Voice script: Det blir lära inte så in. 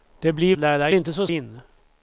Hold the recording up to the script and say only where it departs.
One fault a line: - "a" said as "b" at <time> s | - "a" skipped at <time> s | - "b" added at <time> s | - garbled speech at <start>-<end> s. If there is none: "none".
none